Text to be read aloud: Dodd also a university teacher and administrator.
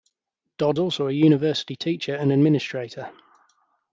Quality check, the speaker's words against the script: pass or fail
pass